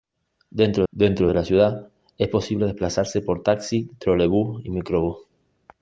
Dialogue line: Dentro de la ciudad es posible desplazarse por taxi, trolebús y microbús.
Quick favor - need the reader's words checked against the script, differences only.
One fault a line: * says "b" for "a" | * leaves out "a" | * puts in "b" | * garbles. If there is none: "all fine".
* puts in "dentro"